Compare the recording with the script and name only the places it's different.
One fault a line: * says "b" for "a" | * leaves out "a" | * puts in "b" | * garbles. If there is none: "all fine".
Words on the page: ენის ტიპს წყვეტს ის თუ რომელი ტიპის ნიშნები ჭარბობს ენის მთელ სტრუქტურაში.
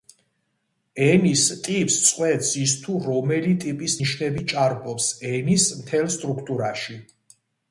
all fine